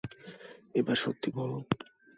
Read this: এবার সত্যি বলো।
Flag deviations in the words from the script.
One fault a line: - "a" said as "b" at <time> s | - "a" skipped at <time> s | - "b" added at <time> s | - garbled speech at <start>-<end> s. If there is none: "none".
none